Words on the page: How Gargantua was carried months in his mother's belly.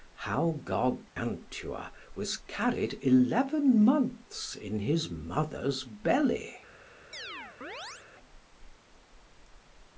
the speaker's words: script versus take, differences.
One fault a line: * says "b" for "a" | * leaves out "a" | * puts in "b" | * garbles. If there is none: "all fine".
* puts in "eleven"